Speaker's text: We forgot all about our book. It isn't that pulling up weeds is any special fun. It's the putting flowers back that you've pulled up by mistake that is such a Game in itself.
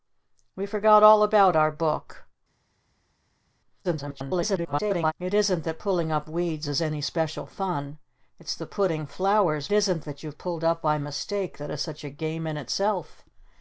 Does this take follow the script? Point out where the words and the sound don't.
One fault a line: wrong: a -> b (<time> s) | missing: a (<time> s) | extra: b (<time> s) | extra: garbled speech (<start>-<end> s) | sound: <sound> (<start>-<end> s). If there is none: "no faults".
extra: garbled speech (3.8-5.1 s)
wrong: back -> isn't (9.7 s)